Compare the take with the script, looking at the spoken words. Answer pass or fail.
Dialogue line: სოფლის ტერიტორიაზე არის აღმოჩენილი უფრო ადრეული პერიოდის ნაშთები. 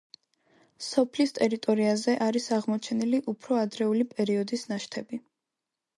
pass